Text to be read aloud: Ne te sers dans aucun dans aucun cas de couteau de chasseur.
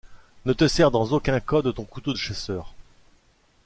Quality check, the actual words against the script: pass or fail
fail